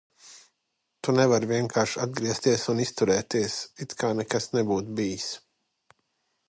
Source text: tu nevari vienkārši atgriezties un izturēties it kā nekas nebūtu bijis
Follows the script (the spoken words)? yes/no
yes